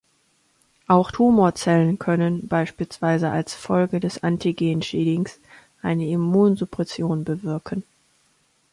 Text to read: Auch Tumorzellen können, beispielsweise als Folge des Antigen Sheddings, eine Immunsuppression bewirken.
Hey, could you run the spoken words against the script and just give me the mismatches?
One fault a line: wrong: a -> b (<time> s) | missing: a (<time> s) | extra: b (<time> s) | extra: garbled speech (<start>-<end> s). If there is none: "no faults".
no faults